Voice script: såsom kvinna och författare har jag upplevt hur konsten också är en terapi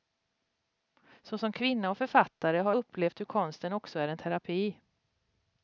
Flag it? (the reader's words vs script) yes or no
yes